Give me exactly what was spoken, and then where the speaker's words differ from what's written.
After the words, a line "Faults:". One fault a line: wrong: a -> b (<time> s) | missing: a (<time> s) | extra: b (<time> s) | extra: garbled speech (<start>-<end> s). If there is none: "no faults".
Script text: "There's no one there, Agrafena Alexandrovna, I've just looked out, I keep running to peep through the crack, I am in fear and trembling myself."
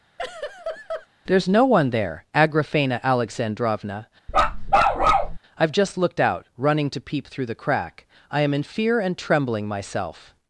"There's no one there, Agrafena Alexandrovna, I've just looked out, running to peep through the crack, I am in fear and trembling myself."
Faults:
missing: I keep (6.5 s)